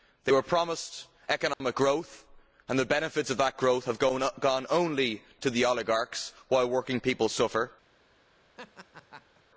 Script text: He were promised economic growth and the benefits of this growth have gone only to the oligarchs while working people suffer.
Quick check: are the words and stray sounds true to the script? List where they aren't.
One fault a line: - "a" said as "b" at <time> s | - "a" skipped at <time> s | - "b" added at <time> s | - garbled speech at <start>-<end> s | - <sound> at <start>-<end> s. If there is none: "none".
- "He" said as "They" at 0.2 s
- dropout at 1.5-1.6 s
- "this" said as "that" at 3.4 s
- laugh at 8.6-9.4 s